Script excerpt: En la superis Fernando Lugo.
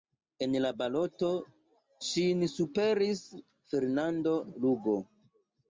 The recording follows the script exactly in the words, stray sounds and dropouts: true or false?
false